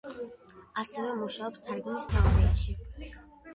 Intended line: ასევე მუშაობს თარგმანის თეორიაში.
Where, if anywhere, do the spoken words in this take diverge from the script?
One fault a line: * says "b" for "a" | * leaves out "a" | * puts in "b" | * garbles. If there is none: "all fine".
all fine